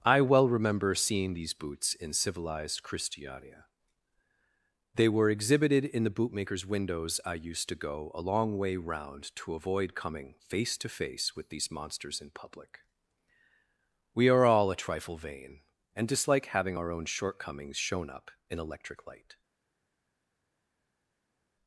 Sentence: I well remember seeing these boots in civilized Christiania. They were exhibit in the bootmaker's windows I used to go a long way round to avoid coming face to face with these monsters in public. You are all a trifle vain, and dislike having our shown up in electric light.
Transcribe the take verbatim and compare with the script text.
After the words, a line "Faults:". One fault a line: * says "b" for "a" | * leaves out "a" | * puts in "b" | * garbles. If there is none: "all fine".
I well remember seeing these boots in civilized Christiania. They were exhibited in the bootmaker's windows I used to go a long way round to avoid coming face to face with these monsters in public. We are all a trifle vain, and dislike having our own shortcomings shown up in electric light.
Faults:
* says "exhibited" for "exhibit"
* says "We" for "You"
* puts in "own shortcomings"